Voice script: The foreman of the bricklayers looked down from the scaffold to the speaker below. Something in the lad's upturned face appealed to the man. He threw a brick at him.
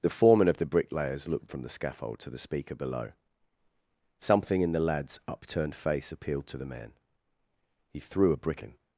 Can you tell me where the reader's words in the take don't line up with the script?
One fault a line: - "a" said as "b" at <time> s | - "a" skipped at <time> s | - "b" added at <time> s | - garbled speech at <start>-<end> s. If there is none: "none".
- "down" skipped at 1.5 s
- "at" skipped at 8.6 s